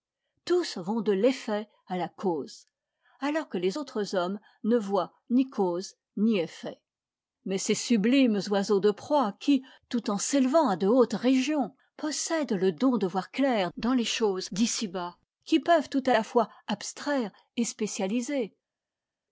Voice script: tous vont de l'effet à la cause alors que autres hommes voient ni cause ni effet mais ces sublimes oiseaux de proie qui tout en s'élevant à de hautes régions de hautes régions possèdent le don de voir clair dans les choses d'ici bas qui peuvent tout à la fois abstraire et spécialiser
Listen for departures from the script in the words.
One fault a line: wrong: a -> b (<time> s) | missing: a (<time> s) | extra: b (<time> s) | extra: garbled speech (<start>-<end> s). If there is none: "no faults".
extra: les (3.6 s)
extra: ne (4.6 s)
missing: de hautes régions (11.7 s)